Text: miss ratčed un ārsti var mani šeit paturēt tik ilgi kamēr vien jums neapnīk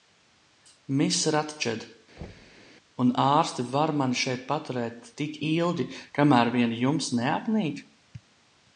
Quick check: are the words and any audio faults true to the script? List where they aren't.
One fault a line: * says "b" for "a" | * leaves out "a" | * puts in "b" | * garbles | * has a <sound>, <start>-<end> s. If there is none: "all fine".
* has a thud, 2.2-2.7 s